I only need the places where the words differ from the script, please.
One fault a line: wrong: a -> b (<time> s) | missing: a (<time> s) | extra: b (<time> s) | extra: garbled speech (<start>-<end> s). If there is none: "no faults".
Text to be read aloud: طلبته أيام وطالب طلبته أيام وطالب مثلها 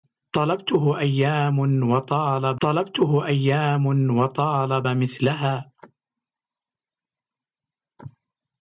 no faults